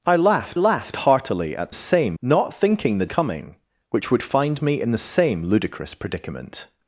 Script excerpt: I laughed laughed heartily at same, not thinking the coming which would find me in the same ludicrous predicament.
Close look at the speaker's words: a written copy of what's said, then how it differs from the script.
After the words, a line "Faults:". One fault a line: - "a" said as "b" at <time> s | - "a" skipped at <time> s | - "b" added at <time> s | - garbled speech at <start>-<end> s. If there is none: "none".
I laughed laughed heartily at same, not thinking the coming which would find me in the same ludicrous predicament.
Faults:
none